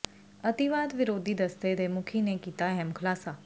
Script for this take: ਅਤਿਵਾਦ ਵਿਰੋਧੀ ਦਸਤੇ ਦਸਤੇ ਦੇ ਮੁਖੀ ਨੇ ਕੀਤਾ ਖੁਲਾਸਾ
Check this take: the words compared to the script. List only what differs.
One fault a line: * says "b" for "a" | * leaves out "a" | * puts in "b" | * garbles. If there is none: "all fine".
* leaves out "ਦਸਤੇ"
* puts in "ਅਹਿਮ"